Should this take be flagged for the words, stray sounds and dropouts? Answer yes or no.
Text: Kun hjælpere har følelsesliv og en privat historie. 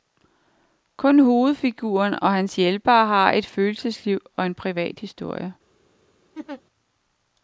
yes